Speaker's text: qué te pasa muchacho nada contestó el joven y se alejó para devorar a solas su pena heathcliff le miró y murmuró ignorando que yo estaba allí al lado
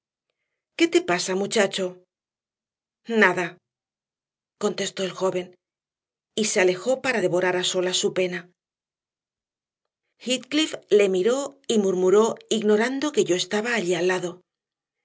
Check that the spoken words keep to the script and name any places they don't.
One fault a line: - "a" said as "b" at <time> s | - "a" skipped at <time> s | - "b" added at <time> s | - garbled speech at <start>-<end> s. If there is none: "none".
none